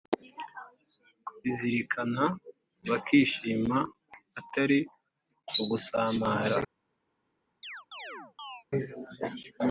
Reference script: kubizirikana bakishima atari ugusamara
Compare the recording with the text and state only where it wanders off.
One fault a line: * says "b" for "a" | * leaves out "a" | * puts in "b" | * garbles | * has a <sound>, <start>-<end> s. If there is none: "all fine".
* has a chirp, 7.6-8.6 s